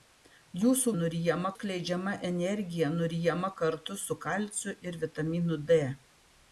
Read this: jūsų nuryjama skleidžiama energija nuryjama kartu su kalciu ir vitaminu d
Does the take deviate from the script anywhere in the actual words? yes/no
no